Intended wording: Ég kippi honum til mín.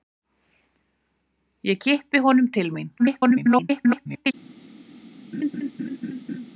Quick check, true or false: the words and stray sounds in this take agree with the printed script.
false